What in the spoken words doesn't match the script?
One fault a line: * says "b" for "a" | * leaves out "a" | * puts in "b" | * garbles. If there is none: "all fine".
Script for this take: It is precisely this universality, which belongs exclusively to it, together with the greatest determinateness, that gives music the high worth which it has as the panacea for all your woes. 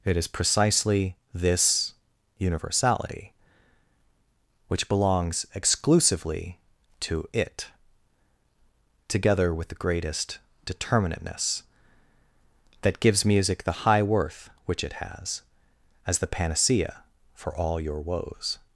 all fine